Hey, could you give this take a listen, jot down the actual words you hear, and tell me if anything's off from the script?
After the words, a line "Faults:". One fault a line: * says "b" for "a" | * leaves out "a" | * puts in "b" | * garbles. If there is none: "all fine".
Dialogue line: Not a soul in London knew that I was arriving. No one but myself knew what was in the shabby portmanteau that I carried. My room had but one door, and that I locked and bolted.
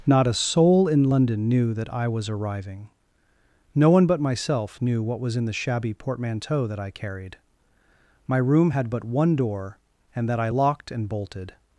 Not a soul in London knew that I was arriving. No one but myself knew what was in the shabby portmanteau that I carried. My room had but one door, and that I locked and bolted.
Faults:
all fine